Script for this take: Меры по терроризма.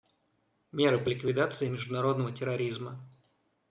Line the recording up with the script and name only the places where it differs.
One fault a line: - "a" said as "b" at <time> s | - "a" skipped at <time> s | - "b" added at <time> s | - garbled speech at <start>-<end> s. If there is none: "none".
- "ликвидации международного" added at 1.1 s